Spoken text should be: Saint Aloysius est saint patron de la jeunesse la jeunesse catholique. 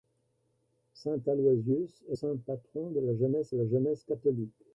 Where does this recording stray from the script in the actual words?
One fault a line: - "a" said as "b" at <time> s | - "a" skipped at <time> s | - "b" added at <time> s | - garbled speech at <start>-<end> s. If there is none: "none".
none